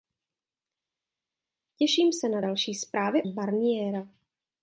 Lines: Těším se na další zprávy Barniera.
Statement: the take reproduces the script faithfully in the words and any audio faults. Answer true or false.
true